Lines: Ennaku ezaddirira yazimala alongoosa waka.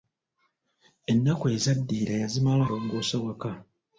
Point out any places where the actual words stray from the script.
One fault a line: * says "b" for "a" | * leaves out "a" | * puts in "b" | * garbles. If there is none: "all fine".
all fine